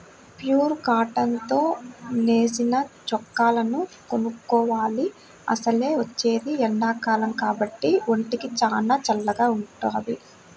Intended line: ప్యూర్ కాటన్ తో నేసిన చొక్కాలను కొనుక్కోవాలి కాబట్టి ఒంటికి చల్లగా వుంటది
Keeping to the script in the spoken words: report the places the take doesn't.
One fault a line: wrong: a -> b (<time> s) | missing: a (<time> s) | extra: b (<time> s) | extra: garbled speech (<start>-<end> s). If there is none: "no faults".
extra: అసలే వచ్చేది ఎండాకాలం (5.5 s)
extra: చానా (8.6 s)